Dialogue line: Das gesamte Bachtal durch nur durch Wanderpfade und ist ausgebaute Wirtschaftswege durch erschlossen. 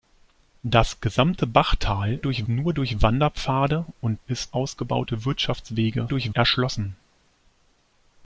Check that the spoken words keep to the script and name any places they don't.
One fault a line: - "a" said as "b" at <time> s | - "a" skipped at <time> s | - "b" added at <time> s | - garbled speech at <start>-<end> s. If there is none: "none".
none